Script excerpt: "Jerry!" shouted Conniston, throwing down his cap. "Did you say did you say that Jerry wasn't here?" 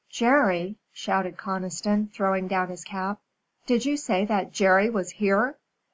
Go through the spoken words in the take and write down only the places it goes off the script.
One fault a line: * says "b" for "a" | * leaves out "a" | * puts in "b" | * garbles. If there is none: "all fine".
* leaves out "did you say"
* says "was" for "wasn't"